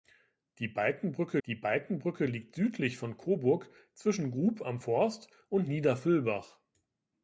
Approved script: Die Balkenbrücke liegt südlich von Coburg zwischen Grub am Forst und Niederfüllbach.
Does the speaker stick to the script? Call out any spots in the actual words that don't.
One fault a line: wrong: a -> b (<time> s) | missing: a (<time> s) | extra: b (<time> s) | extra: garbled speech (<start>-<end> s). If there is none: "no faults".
extra: die Balkenbrücke (1.4 s)